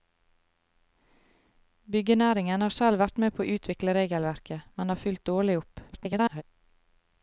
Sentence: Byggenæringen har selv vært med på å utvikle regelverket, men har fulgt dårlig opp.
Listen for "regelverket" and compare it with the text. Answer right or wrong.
right